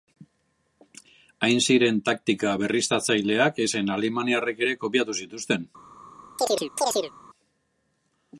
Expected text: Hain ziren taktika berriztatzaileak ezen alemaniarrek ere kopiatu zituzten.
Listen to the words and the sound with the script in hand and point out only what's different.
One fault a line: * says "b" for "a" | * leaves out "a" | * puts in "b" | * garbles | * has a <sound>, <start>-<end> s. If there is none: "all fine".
* has a chirp, 6.4-7.1 s